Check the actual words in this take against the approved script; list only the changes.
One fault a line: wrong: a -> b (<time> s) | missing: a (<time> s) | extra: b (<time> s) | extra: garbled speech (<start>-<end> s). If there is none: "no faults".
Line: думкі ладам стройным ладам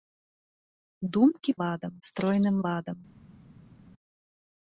no faults